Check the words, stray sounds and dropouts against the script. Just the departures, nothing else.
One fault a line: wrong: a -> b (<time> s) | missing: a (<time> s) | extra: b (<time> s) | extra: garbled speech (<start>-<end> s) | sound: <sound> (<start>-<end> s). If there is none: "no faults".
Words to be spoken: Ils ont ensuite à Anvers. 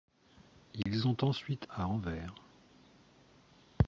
sound: dropout (0.8-0.9 s)